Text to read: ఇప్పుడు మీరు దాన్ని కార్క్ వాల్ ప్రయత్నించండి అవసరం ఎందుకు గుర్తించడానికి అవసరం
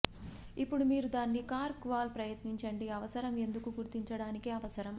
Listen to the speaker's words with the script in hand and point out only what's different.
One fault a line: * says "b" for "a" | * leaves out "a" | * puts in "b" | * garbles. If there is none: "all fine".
all fine